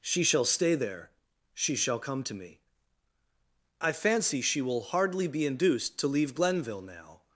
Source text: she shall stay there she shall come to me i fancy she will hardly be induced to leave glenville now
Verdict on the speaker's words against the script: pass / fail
pass